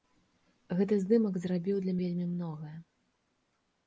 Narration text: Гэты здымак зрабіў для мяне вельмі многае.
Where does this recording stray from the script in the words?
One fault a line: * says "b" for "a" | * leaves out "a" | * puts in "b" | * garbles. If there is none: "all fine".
* leaves out "мяне"